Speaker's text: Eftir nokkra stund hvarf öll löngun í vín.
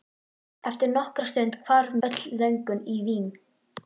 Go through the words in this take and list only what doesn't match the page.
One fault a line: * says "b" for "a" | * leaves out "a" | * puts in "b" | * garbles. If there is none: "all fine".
all fine